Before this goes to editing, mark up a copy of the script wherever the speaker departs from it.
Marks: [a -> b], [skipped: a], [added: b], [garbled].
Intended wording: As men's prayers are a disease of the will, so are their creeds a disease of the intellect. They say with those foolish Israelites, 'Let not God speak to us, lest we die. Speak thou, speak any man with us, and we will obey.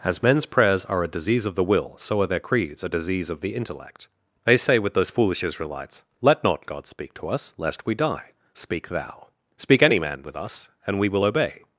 As men's prayers are a disease of the will, so are their creeds a disease of the intellect. They say with those foolish Israelites, 'Let not God speak to us, lest we die. Speak thou, speak any man with us, and we will obey.